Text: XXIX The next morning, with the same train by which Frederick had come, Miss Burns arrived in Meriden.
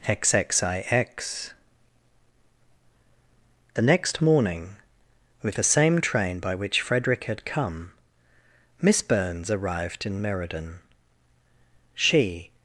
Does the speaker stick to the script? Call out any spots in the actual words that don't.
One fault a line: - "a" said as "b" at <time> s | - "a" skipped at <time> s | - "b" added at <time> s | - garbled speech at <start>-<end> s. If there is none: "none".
- "She" added at 11.9 s